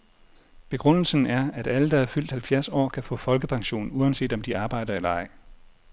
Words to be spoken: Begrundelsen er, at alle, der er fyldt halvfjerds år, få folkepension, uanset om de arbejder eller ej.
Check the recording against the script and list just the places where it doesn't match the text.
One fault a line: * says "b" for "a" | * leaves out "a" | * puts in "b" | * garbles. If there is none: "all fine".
* puts in "kan"